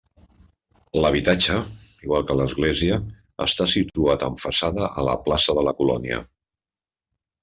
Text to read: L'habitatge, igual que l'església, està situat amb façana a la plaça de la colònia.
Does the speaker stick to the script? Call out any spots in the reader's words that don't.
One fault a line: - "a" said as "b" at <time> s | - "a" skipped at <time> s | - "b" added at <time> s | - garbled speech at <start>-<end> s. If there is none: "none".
none